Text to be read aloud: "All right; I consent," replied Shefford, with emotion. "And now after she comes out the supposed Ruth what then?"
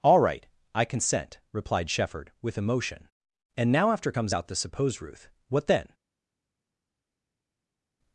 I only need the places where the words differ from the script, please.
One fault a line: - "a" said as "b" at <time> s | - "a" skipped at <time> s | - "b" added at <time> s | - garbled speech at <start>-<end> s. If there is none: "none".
- "she" skipped at 4.1 s